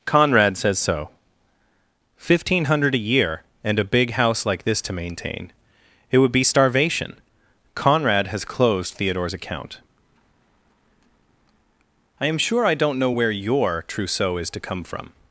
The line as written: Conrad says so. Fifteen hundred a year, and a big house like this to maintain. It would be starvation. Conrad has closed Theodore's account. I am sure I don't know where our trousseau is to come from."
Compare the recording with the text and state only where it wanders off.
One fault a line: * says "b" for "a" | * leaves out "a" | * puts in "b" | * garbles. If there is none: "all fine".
* says "your" for "our"